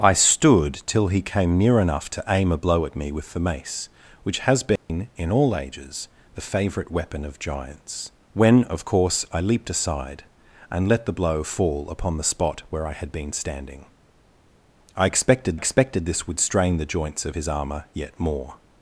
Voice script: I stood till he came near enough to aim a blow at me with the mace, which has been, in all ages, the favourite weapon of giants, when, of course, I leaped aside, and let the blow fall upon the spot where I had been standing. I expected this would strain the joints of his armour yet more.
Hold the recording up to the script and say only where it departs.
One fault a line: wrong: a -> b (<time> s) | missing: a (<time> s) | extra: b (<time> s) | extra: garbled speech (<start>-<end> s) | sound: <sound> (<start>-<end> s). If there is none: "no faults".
sound: dropout (4.8-4.9 s)
extra: expected (15.5 s)